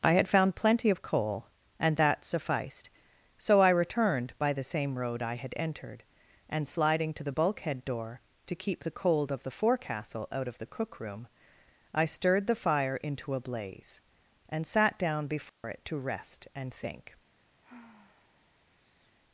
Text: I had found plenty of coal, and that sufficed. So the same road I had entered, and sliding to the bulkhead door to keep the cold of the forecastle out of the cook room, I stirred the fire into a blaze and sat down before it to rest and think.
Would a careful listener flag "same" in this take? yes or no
no